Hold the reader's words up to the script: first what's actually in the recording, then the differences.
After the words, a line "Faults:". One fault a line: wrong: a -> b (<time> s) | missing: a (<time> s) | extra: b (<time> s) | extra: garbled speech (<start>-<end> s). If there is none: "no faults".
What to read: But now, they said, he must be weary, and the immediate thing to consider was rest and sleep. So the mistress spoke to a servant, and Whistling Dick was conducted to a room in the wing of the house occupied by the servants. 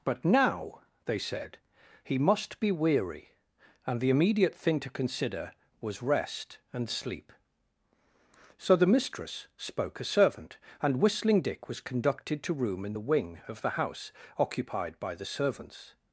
But now, they said, he must be weary, and the immediate thing to consider was rest and sleep. So the mistress spoke a servant, and Whistling Dick was conducted to room in the wing of the house occupied by the servants.
Faults:
missing: to (10.0 s)
missing: a (12.5 s)